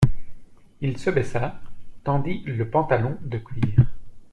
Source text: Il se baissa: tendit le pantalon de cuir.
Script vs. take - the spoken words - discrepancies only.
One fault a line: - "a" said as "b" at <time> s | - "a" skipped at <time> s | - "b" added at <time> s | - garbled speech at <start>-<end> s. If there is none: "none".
none